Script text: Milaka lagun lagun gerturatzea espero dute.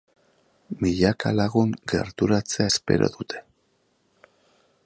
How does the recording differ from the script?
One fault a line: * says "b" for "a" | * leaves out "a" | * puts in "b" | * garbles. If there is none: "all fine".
* leaves out "lagun"